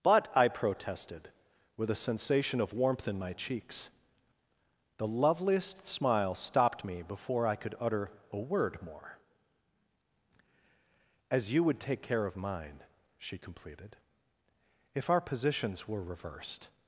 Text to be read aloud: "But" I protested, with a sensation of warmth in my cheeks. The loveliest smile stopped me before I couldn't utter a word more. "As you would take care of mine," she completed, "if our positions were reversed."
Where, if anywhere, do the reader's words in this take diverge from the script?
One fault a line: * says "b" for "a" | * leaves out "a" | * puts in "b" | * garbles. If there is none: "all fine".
* says "could" for "couldn't"